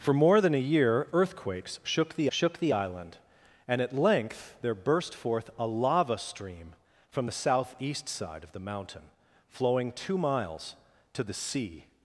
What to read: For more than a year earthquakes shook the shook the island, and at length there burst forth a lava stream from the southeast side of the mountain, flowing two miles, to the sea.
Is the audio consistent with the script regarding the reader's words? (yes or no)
yes